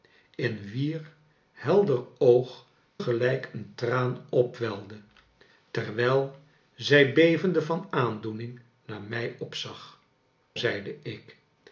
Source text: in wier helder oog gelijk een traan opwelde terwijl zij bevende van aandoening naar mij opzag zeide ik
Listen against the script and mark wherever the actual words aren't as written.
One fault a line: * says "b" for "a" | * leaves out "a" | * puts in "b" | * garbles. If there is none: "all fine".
all fine